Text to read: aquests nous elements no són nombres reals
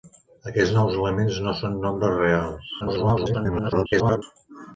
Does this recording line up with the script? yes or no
no